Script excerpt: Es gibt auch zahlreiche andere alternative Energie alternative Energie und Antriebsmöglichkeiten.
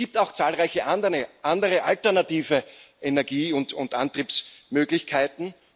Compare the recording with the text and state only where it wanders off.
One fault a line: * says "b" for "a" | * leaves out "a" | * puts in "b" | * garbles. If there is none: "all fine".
* leaves out "alternative Energie"